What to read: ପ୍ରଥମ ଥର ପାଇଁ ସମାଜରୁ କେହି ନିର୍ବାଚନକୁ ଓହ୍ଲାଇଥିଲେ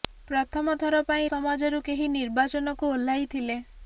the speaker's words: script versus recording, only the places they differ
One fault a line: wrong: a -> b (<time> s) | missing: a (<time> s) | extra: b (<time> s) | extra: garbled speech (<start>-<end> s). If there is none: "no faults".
no faults